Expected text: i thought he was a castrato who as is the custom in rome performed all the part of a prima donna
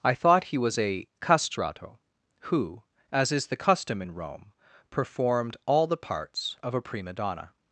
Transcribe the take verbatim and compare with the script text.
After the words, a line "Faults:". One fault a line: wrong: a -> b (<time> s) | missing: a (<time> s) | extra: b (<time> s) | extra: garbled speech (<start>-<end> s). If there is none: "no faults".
i thought he was a castrato who as is the custom in rome performed all the parts of a prima donna
Faults:
wrong: part -> parts (6.0 s)